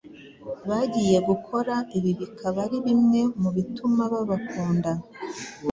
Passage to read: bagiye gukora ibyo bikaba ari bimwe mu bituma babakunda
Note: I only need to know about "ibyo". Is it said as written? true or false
false